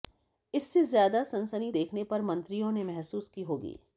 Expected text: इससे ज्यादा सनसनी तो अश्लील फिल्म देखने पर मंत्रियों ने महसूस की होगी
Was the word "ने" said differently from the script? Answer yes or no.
no